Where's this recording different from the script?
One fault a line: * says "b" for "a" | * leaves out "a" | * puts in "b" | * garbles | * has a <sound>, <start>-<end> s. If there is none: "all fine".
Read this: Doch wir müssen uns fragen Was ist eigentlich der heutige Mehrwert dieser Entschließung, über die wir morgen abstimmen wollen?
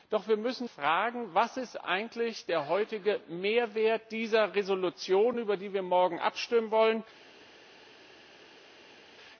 * leaves out "uns"